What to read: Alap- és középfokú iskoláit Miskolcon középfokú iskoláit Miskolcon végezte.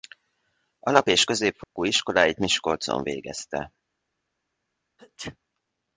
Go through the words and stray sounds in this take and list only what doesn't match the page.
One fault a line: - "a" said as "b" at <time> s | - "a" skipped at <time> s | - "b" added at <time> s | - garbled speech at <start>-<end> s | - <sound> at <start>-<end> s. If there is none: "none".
- dropout at 1.6-1.8 s
- "középfokú iskoláit Miskolcon" skipped at 3.0 s
- sneeze at 5.0-5.4 s